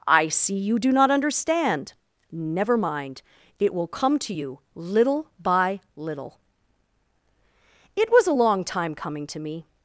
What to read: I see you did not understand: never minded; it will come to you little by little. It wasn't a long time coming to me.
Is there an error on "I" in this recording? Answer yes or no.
no